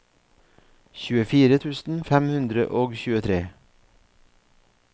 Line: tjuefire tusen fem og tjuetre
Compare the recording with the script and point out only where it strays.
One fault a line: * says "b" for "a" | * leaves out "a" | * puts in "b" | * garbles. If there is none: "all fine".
* puts in "hundre"